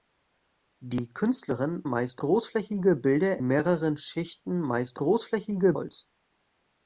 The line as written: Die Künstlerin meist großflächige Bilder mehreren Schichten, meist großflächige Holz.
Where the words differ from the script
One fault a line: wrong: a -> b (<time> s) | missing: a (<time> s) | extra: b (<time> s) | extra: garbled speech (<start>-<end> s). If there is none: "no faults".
no faults